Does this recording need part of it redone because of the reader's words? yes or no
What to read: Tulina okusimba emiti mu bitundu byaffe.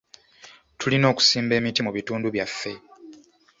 no